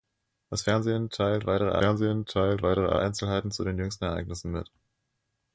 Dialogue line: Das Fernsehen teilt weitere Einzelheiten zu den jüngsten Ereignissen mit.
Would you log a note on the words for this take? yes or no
yes